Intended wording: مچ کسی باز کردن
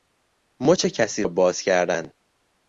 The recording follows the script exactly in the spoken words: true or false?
true